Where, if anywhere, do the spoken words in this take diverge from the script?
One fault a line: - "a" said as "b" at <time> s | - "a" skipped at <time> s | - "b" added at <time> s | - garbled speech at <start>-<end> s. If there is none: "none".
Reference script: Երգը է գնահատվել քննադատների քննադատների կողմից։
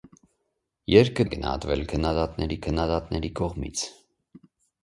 none